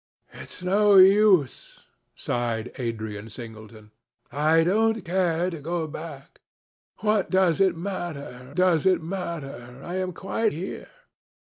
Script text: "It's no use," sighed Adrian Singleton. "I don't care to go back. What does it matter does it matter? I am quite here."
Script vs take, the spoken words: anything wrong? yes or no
no